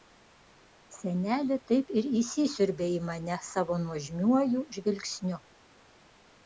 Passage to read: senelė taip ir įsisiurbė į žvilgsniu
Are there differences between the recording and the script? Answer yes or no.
yes